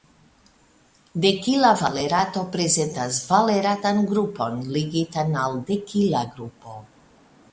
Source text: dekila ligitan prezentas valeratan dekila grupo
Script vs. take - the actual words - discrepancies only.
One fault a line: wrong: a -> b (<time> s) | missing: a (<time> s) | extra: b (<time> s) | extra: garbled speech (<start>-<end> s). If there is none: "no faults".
wrong: ligitan -> valerato (1.8 s)
extra: grupon ligitan al (4.1 s)